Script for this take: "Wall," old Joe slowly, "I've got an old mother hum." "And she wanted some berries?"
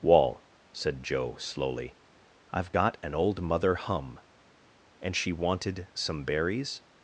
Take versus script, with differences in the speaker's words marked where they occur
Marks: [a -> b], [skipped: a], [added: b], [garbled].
"Wall," [old -> said] Joe slowly, "I've got an old mother hum." "And she wanted some berries?"